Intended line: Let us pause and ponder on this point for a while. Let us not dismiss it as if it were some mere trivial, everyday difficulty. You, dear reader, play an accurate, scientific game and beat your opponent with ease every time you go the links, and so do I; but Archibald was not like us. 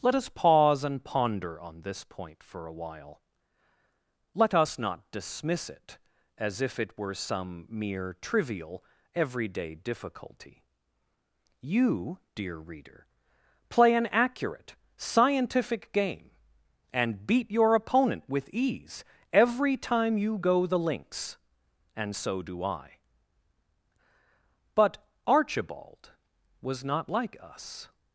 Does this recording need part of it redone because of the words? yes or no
no